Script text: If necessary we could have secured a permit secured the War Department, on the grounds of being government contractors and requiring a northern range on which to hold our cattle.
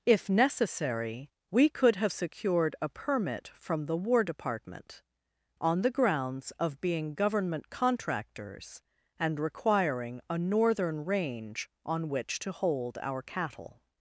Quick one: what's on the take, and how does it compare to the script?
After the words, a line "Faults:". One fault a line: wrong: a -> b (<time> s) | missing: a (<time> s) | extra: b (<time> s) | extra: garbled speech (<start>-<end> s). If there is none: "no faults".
If necessary we could have secured a permit from the War Department, on the grounds of being government contractors and requiring a northern range on which to hold our cattle.
Faults:
wrong: secured -> from (3.5 s)